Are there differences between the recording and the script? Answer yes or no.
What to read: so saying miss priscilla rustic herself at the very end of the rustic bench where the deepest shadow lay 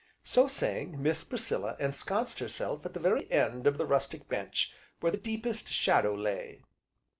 yes